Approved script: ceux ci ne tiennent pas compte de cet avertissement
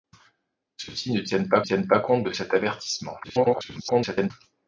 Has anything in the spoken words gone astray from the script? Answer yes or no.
yes